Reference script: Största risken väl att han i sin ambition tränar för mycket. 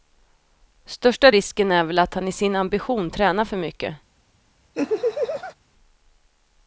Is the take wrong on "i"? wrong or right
right